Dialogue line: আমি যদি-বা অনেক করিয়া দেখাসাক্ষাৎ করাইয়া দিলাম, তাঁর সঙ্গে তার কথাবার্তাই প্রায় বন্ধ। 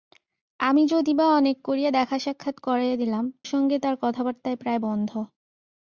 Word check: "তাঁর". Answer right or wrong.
wrong